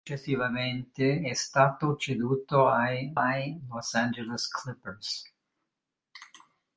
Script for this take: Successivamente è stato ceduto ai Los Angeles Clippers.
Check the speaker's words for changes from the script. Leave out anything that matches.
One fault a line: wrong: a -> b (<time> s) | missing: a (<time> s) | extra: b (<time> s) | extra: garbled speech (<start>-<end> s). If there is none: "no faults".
extra: ai (3.1 s)